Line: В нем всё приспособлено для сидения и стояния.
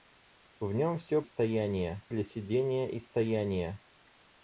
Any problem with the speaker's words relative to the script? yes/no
yes